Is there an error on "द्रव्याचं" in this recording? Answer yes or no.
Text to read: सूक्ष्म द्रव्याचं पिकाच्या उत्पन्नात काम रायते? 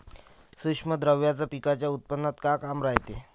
no